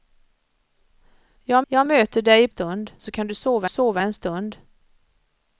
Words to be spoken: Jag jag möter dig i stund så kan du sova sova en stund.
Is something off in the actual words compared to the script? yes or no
no